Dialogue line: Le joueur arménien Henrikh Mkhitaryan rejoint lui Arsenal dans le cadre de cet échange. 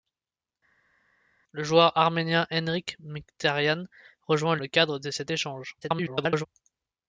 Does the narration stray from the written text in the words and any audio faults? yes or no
yes